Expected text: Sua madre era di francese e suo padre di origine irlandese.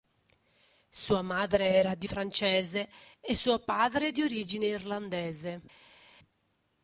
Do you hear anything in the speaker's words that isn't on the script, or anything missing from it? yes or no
no